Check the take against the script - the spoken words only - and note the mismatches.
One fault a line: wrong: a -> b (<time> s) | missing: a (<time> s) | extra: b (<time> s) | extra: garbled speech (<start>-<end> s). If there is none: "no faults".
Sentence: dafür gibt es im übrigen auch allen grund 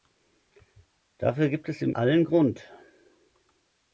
missing: übrigen auch (1.9 s)